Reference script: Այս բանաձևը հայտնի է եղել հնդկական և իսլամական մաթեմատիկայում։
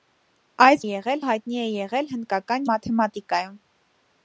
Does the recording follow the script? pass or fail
fail